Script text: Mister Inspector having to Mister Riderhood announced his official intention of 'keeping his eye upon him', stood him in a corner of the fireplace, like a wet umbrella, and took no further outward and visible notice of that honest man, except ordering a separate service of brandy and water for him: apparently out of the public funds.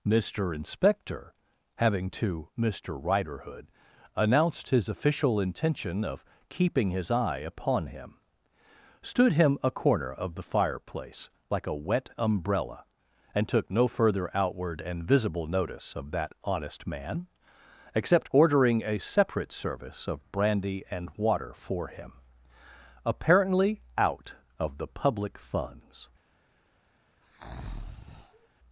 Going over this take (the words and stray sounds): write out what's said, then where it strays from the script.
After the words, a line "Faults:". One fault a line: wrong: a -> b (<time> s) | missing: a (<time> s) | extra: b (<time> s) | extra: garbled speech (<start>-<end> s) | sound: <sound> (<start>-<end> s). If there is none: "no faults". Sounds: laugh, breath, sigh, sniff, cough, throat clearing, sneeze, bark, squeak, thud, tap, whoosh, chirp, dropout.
Mister Inspector having to Mister Riderhood announced his official intention of 'keeping his eye upon him', stood him a corner of the fireplace, like a wet umbrella, and took no further outward and visible notice of that honest man, except ordering a separate service of brandy and water for him: apparently out of the public funds.
Faults:
missing: in (9.6 s)
sound: breath (27.2-28.5 s)